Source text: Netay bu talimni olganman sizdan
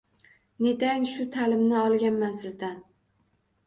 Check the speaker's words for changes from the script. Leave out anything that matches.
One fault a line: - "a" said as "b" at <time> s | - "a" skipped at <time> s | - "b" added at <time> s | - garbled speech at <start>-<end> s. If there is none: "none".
- "bu" said as "shu" at 1.1 s